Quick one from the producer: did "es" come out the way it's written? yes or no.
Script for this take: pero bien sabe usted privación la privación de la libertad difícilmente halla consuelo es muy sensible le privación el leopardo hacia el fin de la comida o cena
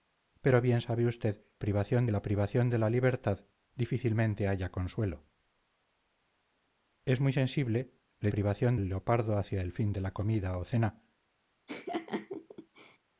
yes